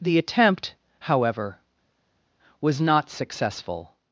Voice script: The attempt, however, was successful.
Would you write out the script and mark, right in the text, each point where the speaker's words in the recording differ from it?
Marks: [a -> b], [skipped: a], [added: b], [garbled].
The attempt, however, was [added: not] successful.